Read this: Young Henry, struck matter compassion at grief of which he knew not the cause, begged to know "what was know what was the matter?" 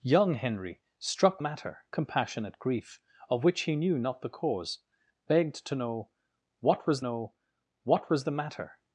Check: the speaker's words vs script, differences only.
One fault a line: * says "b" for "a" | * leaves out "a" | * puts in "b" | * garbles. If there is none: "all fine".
all fine